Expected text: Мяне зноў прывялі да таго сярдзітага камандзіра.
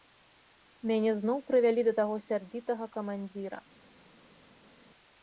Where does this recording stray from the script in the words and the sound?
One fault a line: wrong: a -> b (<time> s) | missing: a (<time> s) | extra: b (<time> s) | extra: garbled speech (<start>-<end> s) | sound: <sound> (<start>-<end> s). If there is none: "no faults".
no faults